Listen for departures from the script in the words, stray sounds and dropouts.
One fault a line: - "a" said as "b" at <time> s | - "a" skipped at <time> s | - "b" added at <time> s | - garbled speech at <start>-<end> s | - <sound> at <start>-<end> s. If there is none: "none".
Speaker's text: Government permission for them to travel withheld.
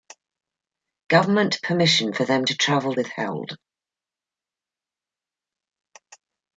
none